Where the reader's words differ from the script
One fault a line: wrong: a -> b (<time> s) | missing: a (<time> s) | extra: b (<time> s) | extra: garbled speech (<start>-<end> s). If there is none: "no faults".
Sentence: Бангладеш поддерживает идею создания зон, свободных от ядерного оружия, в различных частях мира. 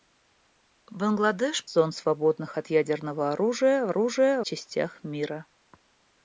missing: поддерживает идею создания (1.6 s)
wrong: различных -> оружия (3.9 s)